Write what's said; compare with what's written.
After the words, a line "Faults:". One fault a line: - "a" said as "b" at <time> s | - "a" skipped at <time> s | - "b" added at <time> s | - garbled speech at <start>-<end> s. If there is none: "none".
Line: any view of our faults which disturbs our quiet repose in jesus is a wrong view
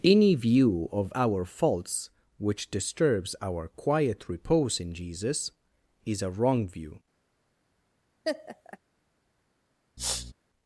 any view of our faults which disturbs our quiet repose in jesus is a wrong view
Faults:
none